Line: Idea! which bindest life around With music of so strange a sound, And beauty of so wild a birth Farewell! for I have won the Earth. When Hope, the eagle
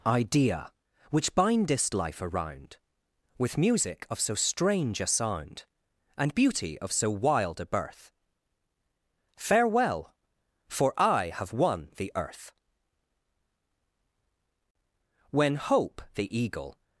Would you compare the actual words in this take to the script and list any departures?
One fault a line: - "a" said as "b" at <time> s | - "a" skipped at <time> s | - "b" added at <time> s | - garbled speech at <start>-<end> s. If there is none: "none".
none